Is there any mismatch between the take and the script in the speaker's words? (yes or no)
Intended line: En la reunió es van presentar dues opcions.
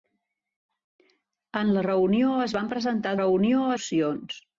yes